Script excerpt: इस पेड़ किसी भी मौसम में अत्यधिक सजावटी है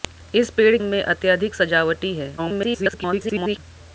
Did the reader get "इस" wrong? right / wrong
right